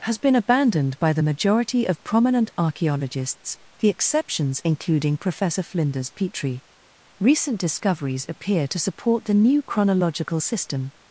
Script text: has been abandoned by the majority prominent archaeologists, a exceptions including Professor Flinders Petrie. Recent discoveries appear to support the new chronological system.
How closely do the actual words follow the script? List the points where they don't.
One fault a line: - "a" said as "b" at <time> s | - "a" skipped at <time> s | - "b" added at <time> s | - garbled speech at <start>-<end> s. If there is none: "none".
- "of" added at 1.9 s
- "a" said as "the" at 3.8 s